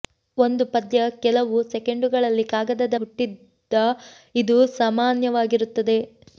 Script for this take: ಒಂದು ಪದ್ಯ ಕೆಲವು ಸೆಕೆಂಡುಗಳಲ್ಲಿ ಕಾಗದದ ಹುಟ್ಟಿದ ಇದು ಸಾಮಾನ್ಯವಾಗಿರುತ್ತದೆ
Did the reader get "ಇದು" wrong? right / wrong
right